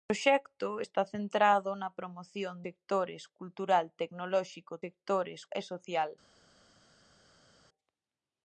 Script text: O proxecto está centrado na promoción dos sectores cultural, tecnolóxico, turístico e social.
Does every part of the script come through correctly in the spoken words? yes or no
no